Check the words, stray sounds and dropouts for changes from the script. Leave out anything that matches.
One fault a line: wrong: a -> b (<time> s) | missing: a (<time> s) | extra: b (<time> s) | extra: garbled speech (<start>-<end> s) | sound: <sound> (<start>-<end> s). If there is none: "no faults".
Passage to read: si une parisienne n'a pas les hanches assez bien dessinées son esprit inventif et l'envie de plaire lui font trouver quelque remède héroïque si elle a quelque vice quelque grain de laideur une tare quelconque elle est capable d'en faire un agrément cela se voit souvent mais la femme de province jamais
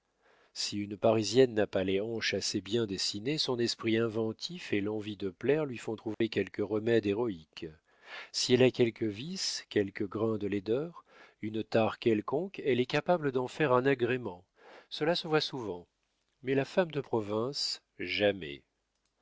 sound: dropout (6.1-6.2 s)